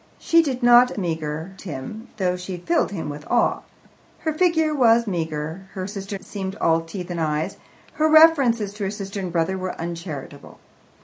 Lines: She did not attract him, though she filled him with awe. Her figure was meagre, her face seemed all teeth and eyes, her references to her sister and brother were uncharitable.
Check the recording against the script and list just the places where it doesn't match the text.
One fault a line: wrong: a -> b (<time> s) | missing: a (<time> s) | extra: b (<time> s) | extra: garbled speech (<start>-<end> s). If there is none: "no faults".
wrong: attract -> meagre (1.0 s)
wrong: face -> sister (5.8 s)